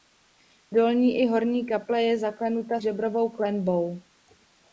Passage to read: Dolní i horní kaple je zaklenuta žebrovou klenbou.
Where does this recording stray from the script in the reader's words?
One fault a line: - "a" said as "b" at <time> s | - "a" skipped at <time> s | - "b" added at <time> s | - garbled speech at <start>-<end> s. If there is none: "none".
none